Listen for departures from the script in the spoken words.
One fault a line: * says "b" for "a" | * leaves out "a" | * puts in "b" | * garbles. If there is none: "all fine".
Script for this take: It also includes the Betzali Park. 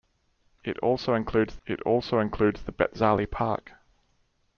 * puts in "it also includes"